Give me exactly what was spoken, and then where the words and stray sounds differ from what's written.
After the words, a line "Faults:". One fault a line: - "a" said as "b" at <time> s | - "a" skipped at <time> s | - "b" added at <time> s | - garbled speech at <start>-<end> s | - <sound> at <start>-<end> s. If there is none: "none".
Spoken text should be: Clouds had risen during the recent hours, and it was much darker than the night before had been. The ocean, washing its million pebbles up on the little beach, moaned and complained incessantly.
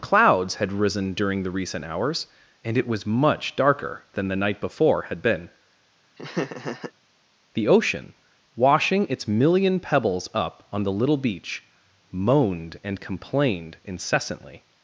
Clouds had risen during the recent hours, and it was much darker than the night before had been. The ocean, washing its million pebbles up on the little beach, moaned and complained incessantly.
Faults:
- laugh at 6.2-6.9 s